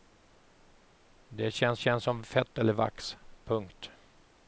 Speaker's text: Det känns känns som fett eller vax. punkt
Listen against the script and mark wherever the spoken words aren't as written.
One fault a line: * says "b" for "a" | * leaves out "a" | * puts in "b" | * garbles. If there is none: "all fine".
all fine